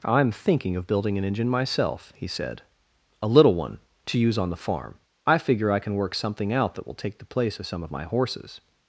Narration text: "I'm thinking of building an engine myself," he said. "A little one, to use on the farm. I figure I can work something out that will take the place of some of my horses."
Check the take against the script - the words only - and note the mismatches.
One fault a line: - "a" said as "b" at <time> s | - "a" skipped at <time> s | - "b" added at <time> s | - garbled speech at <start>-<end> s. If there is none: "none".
none